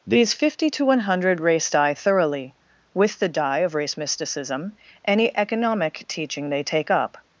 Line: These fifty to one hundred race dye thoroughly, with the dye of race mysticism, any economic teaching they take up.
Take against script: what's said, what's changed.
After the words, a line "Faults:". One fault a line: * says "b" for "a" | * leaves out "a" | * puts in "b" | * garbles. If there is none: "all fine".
These fifty to one hundred race dye thoroughly, with the dye of race mysticism, any economic teaching they take up.
Faults:
all fine